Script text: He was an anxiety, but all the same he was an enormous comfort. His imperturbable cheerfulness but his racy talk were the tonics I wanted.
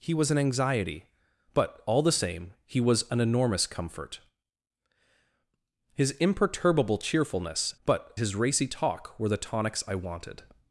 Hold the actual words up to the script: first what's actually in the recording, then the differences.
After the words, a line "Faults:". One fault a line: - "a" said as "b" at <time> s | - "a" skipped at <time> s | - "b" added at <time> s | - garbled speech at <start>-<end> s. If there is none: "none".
He was an anxiety, but all the same he was an enormous comfort. His imperturbable cheerfulness but his racy talk were the tonics I wanted.
Faults:
none